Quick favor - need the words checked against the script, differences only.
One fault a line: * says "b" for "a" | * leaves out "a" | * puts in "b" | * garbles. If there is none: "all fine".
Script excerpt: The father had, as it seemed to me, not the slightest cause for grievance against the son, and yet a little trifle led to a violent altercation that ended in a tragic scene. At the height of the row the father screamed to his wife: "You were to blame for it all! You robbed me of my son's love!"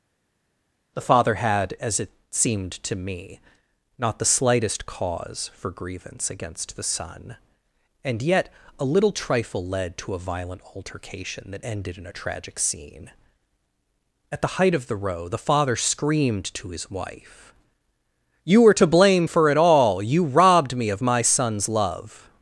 all fine